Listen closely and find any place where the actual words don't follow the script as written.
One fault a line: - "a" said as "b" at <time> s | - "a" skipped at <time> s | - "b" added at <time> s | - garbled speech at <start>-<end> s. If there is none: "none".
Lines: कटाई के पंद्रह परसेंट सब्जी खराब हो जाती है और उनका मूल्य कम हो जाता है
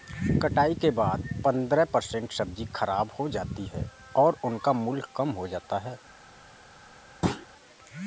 - "बाद" added at 0.9 s